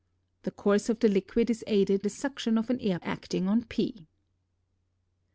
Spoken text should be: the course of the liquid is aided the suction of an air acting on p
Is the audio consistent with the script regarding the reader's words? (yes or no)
yes